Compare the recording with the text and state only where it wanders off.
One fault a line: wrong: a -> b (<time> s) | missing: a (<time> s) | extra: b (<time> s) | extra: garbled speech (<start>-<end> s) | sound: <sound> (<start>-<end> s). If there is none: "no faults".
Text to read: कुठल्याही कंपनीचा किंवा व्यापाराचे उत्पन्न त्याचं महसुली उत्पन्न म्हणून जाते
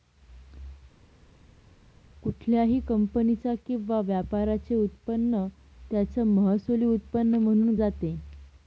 no faults